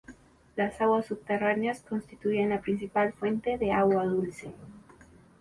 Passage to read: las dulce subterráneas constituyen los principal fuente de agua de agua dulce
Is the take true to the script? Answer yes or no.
no